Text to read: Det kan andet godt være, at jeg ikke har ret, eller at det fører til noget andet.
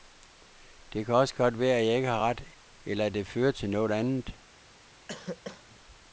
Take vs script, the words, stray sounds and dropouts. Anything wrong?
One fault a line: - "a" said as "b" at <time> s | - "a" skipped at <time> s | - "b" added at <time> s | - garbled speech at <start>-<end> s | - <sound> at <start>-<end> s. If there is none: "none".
- "andet" said as "også" at 1.1 s
- cough at 5.1-5.8 s